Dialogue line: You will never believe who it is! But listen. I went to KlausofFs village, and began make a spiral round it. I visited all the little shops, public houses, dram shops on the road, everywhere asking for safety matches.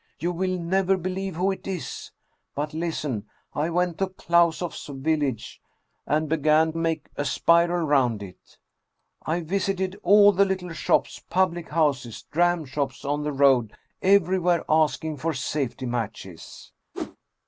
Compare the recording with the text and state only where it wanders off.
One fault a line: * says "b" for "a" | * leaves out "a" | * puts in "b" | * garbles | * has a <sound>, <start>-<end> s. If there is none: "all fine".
* has a whoosh, 16.9-17.2 s